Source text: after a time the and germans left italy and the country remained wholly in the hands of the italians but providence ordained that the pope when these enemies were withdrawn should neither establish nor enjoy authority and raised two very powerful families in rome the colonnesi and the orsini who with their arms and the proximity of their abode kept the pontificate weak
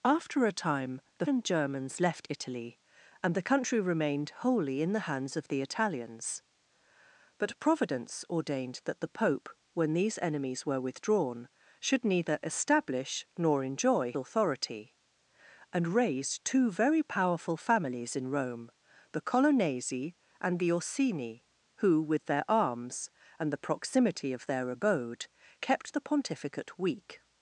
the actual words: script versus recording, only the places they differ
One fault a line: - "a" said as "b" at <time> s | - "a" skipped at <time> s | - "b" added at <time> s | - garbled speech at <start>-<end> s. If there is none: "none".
none